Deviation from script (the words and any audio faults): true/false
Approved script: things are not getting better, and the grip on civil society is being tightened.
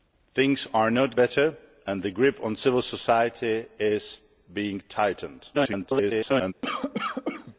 true